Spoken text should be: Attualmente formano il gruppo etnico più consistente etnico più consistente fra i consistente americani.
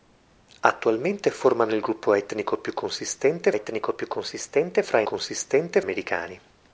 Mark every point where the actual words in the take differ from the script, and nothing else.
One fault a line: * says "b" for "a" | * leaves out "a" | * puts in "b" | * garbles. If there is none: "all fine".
all fine